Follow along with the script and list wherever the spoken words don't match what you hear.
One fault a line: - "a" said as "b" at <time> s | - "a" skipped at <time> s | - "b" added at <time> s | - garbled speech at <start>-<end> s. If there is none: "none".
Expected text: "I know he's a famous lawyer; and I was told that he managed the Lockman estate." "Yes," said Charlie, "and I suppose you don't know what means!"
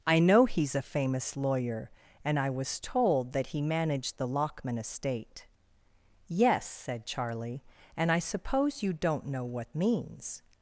none